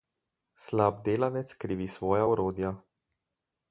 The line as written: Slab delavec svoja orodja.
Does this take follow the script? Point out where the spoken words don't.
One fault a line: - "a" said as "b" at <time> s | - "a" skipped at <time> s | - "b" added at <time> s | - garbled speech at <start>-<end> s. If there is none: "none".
- "krivi" added at 1.5 s